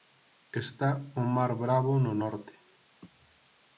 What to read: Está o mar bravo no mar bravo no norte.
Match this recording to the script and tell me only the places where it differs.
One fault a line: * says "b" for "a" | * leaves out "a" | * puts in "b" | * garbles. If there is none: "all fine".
* leaves out "mar bravo no"